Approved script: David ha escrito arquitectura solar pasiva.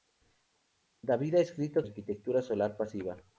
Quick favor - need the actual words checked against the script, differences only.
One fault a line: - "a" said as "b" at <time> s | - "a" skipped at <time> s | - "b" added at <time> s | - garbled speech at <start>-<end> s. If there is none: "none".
none